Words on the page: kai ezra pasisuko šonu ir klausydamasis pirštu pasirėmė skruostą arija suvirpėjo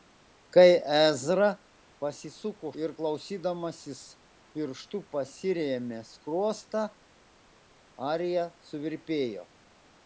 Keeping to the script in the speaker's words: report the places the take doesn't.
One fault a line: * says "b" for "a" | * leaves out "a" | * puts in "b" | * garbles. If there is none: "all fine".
* leaves out "šonu"